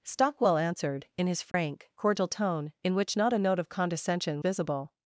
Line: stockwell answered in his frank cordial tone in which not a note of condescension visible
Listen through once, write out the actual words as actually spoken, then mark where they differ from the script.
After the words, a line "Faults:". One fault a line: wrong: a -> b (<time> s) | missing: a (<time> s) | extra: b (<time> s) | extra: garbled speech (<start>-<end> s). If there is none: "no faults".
stockwell answered in his frank cordial tone in which not a note of condescension visible
Faults:
no faults